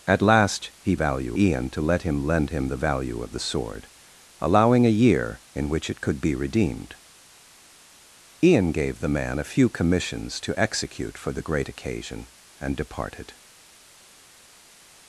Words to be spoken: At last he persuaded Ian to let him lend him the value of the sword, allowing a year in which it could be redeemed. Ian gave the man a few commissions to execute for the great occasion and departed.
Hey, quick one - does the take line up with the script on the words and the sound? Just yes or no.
no